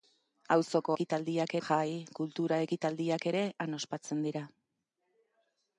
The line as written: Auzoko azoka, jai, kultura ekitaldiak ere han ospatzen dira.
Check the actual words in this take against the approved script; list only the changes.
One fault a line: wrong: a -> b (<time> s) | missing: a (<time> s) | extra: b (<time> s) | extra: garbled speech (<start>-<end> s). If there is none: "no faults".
wrong: azoka -> ekitaldiak (0.9 s)